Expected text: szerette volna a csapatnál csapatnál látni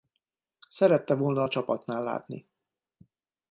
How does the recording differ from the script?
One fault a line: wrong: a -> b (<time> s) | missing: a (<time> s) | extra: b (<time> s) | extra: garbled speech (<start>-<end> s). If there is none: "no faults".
missing: csapatnál (2.0 s)